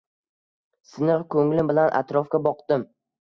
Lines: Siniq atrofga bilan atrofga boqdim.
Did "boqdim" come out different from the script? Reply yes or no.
no